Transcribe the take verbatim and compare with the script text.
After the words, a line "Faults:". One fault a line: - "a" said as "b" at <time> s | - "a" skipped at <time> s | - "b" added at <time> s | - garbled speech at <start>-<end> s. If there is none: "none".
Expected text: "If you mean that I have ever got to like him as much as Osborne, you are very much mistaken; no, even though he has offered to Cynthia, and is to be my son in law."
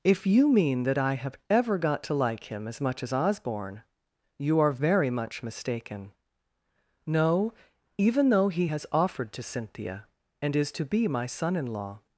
"If you mean that I have ever got to like him as much as Osborne, you are very much mistaken; no, even though he has offered to Cynthia, and is to be my son in law."
Faults:
none